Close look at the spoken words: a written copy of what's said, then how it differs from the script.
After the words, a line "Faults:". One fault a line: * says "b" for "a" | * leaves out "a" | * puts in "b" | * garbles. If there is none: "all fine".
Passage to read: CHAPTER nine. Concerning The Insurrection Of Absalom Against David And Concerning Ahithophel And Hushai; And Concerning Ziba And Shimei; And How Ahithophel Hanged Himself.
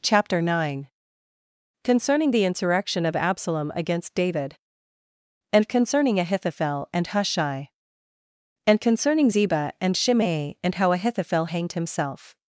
CHAPTER nine. Concerning The Insurrection Of Absalom Against David And Concerning Ahithophel And Hushai; And Concerning Ziba And Shimei; And How Ahithophel Hanged Himself.
Faults:
all fine